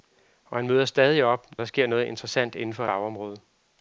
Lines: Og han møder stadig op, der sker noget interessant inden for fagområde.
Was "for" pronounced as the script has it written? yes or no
yes